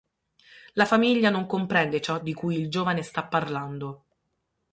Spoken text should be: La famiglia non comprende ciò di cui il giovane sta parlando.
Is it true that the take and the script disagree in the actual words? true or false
false